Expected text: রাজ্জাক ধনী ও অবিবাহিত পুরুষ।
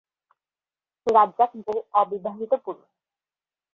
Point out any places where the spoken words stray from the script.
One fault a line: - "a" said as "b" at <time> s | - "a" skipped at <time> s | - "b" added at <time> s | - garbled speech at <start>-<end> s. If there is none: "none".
- "ধনী" skipped at 1.5 s